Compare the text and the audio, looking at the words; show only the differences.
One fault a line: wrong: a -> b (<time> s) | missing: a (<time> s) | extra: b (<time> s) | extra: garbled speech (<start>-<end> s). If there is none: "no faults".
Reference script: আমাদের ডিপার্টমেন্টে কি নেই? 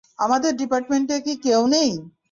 extra: কেউ (1.4 s)